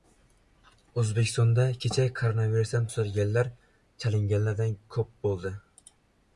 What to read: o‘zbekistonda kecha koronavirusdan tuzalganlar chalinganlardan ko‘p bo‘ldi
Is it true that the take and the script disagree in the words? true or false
false